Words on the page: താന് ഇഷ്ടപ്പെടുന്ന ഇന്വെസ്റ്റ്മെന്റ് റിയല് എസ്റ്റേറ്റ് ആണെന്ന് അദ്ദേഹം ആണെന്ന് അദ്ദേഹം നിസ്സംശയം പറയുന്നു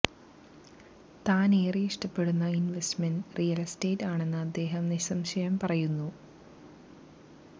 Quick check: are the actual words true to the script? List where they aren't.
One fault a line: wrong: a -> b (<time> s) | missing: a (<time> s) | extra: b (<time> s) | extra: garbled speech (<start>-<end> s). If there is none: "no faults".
extra: ഏറെ (1.6 s)
missing: ആണെന്ന് അദ്ദേഹം (4.8 s)